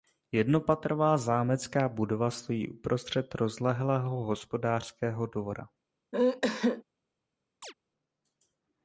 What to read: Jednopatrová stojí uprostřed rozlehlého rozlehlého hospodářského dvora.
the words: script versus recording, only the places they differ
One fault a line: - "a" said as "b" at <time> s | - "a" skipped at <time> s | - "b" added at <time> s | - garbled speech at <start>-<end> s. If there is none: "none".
- "zámecká budova" added at 1.2 s
- "rozlehlého" skipped at 4.2 s